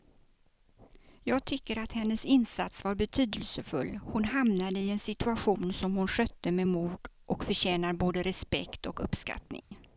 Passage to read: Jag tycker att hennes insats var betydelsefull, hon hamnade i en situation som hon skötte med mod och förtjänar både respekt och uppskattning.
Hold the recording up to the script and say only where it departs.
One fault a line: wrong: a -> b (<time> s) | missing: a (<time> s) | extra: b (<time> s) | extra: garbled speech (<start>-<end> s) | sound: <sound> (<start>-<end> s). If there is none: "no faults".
sound: dropout (9.6-9.7 s)